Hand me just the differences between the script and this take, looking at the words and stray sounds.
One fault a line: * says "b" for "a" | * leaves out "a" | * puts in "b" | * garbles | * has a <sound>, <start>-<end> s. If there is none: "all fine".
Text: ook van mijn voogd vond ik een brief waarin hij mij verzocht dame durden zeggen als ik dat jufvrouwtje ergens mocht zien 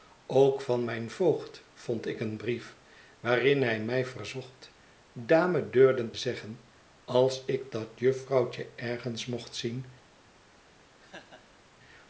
* has a laugh, 11.0-11.6 s